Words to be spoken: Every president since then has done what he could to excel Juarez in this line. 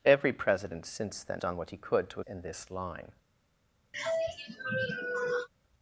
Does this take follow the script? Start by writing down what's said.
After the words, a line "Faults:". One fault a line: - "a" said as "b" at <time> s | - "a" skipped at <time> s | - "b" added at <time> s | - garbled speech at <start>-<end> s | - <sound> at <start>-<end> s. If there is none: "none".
Every president since then done what he could to in this line.
Faults:
- "has" skipped at 1.4 s
- "excel Juarez" skipped at 2.2 s
- sigh at 3.9-5.5 s